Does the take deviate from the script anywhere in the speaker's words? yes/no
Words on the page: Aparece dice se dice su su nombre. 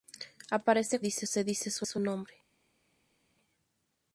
no